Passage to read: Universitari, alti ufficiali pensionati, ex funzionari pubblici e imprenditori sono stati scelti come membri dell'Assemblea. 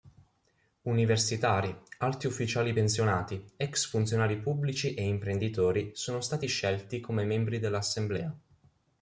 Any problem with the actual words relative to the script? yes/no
no